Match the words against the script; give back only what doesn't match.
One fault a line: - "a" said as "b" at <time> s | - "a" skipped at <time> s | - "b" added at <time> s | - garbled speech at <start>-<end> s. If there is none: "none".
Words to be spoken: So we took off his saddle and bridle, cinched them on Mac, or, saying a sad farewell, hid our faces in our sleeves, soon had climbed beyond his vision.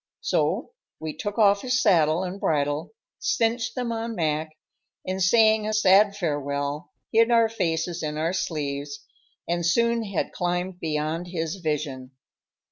- "or" said as "and" at 5.0 s
- "and" added at 9.5 s